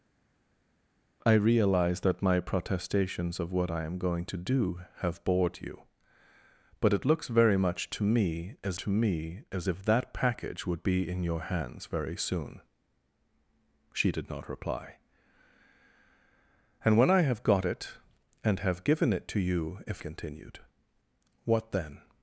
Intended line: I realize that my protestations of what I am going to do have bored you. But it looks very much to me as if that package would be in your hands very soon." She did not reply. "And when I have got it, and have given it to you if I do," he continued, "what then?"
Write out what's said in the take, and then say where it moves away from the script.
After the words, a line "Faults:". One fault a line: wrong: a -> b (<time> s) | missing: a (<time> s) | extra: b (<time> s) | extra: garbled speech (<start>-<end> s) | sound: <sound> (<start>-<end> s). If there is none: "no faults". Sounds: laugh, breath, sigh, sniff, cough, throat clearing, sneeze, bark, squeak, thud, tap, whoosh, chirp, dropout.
I realize that my protestations of what I am going to do have bored you. But it looks very much to me as to me as if that package would be in your hands very soon." She did not reply. "And when I have got it, and have given it to you if continued, "what then?"
Faults:
extra: to me as (8.8 s)
missing: I do he (20.0 s)